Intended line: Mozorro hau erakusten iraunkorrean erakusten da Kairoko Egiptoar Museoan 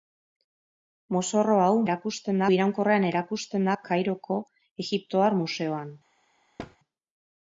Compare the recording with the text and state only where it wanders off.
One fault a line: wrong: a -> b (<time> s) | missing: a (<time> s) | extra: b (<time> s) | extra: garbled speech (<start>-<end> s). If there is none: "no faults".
no faults